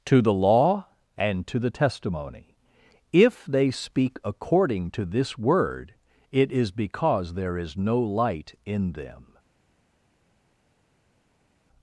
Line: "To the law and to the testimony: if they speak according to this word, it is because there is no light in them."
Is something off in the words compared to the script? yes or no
no